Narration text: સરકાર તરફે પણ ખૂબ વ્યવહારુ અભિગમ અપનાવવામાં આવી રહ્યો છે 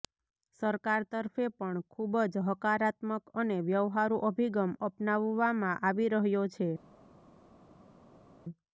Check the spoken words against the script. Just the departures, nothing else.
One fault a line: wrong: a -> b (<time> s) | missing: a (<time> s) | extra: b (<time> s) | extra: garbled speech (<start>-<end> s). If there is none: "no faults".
extra: જ હકારાત્મક અને (2.3 s)